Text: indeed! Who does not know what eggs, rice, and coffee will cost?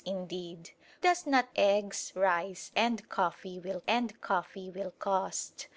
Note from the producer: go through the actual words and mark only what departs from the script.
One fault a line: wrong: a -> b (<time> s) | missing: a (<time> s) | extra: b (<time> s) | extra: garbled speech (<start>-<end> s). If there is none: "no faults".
missing: Who (0.7 s)
wrong: know what eggs rice -> eggs rice and coffee will (1.5 s)